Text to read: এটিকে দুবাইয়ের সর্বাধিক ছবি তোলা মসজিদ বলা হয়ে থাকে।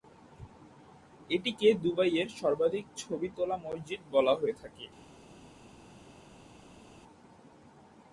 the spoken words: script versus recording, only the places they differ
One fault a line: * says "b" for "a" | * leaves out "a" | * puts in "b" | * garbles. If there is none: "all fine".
all fine